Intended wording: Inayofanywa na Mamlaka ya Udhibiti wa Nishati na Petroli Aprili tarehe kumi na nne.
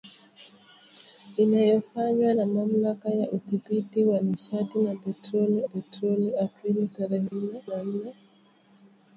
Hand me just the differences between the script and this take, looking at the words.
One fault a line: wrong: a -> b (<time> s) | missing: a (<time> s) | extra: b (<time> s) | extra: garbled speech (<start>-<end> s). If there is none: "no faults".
extra: Petroli (5.6 s)
wrong: kumi -> nne (7.3 s)